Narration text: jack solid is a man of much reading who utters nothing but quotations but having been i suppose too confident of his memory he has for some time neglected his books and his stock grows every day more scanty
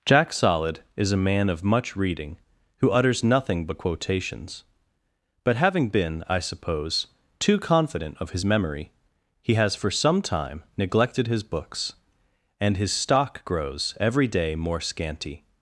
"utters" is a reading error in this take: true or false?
false